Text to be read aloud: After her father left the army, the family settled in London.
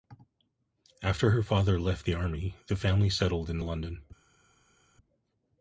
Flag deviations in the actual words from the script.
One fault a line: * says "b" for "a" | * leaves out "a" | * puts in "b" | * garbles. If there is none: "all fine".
all fine